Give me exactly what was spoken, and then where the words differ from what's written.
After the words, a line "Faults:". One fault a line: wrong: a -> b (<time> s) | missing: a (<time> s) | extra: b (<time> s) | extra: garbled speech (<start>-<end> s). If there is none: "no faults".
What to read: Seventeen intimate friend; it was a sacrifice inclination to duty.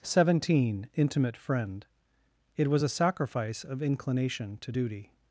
Seventeen intimate friend; it was a sacrifice of inclination to duty.
Faults:
extra: of (3.7 s)